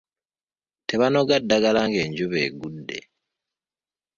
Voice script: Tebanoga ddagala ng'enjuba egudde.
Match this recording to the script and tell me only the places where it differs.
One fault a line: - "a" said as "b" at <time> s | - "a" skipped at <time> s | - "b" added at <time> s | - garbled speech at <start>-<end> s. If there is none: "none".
none